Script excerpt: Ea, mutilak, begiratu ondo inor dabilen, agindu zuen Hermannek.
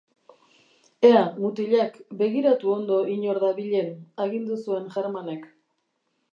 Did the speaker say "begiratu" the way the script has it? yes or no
yes